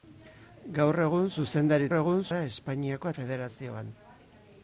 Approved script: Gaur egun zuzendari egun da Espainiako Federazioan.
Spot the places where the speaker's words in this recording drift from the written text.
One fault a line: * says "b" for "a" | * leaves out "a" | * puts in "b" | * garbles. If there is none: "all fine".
all fine